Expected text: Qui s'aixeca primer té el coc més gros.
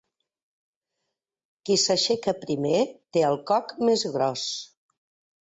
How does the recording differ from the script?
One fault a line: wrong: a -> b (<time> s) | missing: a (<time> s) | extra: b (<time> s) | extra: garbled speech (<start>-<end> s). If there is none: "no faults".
no faults